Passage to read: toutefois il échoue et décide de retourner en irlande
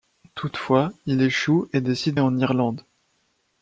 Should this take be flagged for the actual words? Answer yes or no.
yes